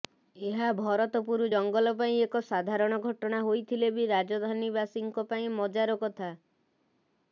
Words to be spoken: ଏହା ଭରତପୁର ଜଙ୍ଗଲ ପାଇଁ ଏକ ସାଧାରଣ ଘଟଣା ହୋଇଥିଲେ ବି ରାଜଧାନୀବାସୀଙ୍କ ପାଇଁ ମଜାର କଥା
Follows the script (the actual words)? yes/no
yes